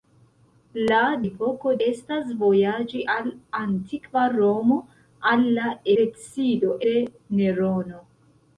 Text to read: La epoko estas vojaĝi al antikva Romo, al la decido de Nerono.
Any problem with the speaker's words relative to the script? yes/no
no